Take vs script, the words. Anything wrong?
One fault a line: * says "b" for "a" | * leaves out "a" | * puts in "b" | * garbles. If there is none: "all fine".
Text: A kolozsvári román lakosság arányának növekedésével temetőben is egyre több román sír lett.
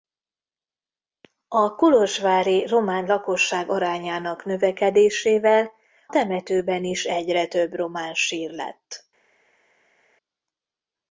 all fine